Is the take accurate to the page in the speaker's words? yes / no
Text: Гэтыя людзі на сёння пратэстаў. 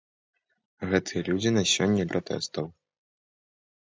yes